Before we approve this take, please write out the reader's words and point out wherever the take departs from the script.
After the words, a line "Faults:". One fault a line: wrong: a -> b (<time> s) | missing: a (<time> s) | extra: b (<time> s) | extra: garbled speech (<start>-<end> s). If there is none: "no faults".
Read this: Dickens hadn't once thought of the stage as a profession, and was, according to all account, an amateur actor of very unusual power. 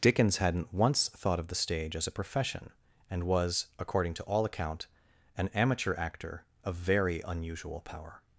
Dickens hadn't once thought of the stage as a profession, and was, according to all account, an amateur actor of very unusual power.
Faults:
no faults